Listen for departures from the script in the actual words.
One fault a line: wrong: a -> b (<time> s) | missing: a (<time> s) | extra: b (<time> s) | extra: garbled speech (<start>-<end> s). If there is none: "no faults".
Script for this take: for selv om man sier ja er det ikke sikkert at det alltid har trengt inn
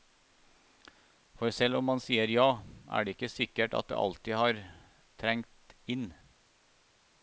no faults